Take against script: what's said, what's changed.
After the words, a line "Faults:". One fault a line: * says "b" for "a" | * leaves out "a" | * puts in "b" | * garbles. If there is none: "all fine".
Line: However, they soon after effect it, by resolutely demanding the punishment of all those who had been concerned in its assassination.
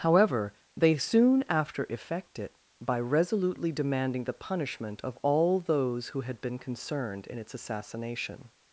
However, they soon after effect it, by resolutely demanding the punishment of all those who had been concerned in its assassination.
Faults:
all fine